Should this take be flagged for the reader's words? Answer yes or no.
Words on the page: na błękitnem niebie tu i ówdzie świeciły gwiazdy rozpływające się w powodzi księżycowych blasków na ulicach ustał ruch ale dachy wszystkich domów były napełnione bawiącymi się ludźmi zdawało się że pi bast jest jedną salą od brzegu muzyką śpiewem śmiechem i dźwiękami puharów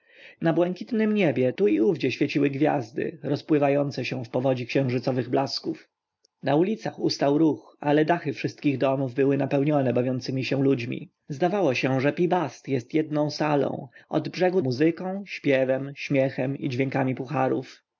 no